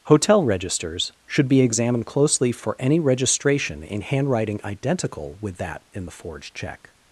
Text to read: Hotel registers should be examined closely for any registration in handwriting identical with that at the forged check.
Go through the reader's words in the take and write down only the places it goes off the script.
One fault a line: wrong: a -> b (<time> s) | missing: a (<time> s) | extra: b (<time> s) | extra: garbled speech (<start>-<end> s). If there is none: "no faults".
wrong: at -> in (5.9 s)